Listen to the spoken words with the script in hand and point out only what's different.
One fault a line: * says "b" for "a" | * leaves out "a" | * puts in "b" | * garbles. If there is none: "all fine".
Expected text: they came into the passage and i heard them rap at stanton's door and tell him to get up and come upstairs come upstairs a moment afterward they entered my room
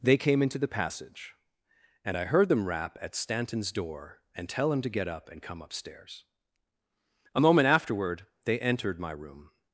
* leaves out "come upstairs"